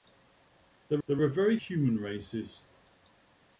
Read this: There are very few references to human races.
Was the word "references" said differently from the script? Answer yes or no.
yes